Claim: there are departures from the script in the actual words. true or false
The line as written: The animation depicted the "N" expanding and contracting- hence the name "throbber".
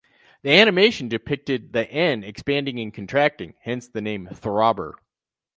false